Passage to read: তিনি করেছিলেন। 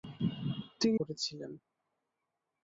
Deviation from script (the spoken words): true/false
false